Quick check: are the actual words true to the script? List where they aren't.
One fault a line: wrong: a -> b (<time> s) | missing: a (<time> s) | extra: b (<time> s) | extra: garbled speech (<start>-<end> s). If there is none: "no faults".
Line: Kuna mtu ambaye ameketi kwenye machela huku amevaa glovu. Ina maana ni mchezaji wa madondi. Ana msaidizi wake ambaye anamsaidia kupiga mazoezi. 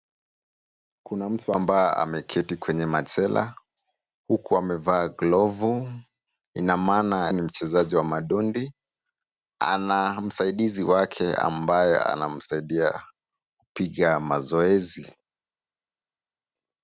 no faults